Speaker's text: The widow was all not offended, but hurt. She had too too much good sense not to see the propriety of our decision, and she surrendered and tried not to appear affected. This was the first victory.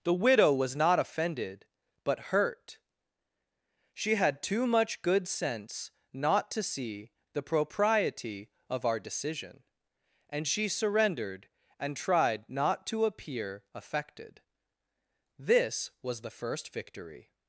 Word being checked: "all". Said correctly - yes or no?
no